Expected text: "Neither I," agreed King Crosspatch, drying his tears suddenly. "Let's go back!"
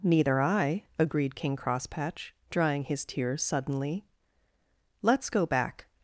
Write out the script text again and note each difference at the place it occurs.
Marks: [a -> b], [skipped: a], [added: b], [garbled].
"Neither I," agreed King Crosspatch, drying his tears suddenly. "Let's go back!"